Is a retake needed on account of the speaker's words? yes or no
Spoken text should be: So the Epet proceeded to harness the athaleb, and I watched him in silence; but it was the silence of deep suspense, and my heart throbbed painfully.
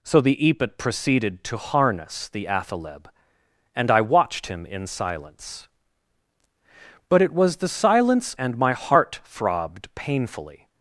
yes